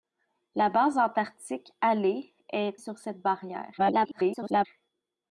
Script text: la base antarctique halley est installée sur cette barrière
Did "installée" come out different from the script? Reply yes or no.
yes